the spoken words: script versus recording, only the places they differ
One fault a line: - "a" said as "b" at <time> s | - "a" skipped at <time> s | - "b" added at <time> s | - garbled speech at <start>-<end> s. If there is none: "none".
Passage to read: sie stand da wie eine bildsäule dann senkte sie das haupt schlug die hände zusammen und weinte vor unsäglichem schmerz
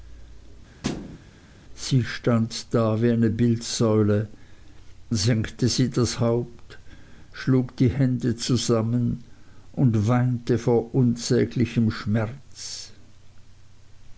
- "dann" skipped at 4.3 s